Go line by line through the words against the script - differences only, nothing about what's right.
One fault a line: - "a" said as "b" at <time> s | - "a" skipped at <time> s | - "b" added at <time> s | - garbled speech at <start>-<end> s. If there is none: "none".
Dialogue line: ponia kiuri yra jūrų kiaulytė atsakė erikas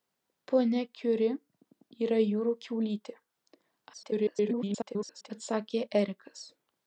- garbled speech at 3.9-5.3 s